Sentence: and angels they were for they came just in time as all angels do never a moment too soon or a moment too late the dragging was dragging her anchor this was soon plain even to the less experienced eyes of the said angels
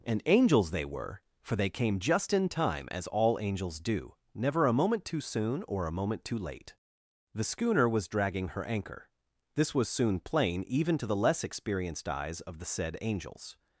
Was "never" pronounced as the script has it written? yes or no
yes